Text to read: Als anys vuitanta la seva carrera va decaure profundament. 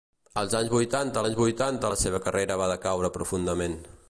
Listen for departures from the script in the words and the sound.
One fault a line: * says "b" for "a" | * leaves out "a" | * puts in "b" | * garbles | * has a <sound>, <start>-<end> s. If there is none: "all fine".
* puts in "anys vuitanta"